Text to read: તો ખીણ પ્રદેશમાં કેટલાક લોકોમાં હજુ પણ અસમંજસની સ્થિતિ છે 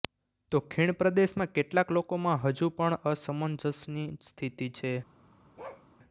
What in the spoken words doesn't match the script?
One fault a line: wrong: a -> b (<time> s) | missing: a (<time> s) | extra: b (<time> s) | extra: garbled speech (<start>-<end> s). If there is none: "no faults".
no faults